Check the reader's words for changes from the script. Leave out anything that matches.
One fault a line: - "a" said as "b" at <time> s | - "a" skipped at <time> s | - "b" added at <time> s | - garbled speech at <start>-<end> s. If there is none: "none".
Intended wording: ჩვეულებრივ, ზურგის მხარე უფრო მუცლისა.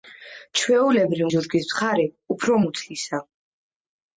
none